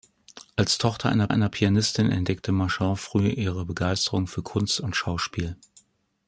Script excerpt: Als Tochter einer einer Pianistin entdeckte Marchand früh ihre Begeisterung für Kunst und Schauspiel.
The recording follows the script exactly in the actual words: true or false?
true